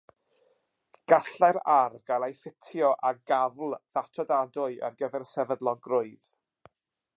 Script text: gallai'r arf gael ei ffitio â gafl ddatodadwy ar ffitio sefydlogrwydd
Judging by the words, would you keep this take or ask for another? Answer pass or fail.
fail